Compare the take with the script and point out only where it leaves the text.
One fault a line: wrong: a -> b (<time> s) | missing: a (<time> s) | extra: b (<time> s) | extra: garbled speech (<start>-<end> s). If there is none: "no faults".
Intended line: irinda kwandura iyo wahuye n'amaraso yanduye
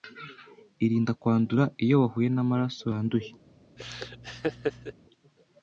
no faults